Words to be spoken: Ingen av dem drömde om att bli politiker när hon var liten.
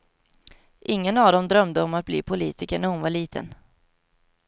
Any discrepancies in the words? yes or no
no